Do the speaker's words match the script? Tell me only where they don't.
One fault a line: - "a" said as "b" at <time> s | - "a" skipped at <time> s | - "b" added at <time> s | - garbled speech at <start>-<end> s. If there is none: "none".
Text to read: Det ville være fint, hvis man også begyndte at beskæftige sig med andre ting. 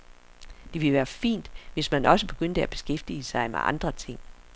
none